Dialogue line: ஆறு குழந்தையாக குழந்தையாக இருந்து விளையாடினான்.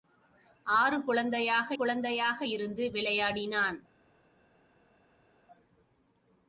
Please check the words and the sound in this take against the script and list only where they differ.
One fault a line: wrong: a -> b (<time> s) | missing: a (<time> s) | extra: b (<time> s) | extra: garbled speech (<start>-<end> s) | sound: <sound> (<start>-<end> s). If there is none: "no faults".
no faults